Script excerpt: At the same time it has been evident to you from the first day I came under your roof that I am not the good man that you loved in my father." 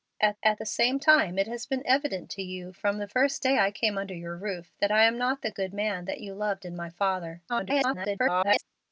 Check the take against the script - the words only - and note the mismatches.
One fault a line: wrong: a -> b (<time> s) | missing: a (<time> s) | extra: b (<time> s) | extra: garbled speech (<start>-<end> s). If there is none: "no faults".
extra: at (0.4 s)
extra: garbled speech (7.5-8.6 s)